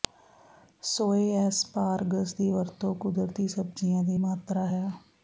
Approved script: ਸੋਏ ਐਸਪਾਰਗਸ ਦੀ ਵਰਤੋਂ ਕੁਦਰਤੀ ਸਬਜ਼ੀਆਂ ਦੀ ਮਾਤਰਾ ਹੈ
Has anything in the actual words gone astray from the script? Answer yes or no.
no